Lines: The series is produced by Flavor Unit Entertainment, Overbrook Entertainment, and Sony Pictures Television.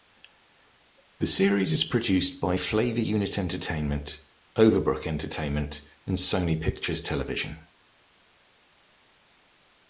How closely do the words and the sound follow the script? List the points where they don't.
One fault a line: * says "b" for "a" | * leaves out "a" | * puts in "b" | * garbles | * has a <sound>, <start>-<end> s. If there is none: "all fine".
all fine